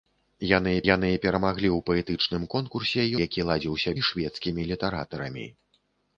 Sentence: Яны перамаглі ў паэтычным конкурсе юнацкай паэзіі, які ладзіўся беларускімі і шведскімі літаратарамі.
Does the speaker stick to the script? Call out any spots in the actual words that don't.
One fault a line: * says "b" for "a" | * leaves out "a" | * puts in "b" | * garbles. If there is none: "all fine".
* puts in "яны"
* leaves out "юнацкай паэзіі"
* leaves out "беларускімі"